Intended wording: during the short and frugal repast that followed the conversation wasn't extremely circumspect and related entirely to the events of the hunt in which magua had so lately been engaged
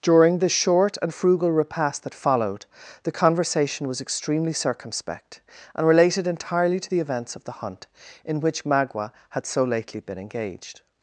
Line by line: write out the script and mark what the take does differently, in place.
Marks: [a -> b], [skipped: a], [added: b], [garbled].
during the short and frugal repast that followed the conversation [wasn't -> was] extremely circumspect and related entirely to the events of the hunt in which magua had so lately been engaged